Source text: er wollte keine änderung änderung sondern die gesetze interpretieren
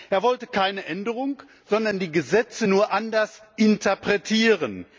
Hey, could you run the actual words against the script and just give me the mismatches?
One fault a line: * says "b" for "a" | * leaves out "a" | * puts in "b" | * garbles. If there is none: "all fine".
* leaves out "änderung"
* puts in "nur anders"